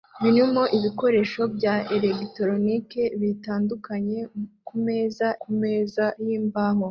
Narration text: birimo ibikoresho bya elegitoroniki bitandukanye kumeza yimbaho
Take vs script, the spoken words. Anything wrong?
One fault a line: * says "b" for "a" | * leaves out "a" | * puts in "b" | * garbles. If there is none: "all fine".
* puts in "kumeza"